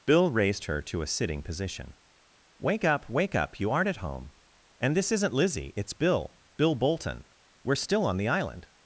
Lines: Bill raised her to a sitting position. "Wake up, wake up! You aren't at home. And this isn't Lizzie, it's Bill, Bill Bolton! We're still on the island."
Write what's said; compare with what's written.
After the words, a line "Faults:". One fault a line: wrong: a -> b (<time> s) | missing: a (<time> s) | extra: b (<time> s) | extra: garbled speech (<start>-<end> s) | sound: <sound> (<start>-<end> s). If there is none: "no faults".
Bill raised her to a sitting position. "Wake up, wake up! You aren't at home. And this isn't Lizzie, it's Bill, Bill Bolton! We're still on the island."
Faults:
no faults